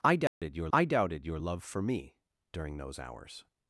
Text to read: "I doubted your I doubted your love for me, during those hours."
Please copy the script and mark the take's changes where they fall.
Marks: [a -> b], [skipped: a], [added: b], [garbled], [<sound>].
"I doubted [dropout] your I doubted your love for me, during those hours."